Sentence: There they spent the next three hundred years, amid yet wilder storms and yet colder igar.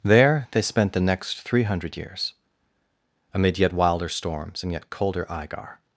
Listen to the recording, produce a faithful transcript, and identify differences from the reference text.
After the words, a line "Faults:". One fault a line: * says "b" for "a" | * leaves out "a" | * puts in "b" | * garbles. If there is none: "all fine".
There they spent the next three hundred years, amid yet wilder storms and yet colder igar.
Faults:
all fine